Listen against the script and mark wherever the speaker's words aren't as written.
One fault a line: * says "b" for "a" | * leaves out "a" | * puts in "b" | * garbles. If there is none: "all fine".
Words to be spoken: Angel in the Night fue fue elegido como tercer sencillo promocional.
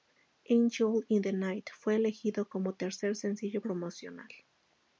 * leaves out "fue"